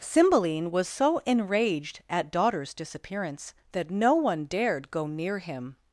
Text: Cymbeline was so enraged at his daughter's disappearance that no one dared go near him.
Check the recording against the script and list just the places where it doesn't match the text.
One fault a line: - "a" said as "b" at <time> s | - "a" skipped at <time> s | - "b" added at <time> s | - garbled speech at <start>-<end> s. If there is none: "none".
- "his" skipped at 2.3 s